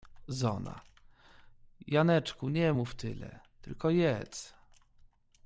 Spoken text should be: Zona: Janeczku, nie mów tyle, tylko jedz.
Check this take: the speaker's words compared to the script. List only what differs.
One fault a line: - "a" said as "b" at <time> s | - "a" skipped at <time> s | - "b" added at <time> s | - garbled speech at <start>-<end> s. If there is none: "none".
none